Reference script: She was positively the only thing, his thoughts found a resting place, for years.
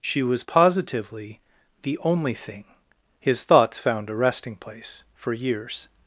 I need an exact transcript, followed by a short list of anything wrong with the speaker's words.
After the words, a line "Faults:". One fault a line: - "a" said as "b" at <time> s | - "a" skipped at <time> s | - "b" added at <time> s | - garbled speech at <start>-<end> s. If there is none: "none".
She was positively the only thing, his thoughts found a resting place, for years.
Faults:
none